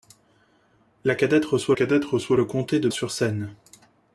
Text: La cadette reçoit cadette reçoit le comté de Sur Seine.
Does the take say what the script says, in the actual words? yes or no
yes